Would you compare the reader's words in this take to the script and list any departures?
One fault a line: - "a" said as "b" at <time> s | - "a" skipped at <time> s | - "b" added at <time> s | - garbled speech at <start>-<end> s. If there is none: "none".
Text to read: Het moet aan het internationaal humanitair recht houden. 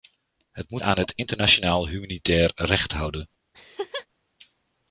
none